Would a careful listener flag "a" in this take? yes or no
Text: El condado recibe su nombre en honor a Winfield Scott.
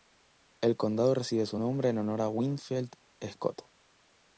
no